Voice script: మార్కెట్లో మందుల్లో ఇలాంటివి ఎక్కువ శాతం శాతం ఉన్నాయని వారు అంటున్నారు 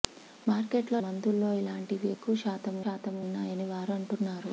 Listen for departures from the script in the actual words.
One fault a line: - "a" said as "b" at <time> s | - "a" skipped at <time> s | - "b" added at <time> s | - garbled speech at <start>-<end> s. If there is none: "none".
none